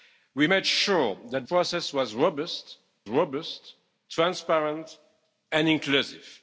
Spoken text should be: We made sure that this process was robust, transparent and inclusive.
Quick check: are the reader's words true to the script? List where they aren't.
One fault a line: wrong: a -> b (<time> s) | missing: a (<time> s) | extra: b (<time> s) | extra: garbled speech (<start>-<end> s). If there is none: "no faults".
missing: this (1.5 s)
extra: robust (3.1 s)